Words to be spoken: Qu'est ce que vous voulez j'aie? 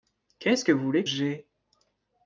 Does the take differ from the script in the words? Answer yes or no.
no